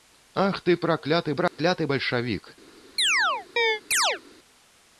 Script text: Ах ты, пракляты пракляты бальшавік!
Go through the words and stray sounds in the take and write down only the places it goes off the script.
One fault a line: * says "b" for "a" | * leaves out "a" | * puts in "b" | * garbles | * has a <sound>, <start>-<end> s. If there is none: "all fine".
* has a dropout, 1.5-1.6 s
* has a chirp, 3.0-4.2 s